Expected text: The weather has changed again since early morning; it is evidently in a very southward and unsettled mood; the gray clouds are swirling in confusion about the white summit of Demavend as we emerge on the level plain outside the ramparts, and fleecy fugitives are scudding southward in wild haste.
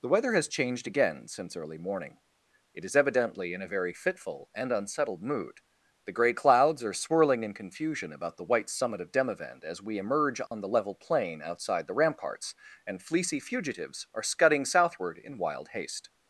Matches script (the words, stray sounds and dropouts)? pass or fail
fail